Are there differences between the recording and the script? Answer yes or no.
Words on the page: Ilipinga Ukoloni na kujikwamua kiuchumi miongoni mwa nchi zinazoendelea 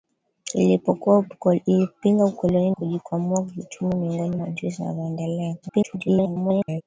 yes